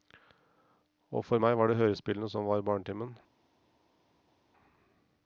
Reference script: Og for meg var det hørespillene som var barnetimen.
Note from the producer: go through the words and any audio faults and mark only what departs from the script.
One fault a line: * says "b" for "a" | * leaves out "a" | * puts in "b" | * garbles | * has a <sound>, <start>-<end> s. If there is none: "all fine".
all fine